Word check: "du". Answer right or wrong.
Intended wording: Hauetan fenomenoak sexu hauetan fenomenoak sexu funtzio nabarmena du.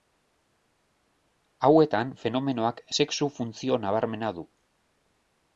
right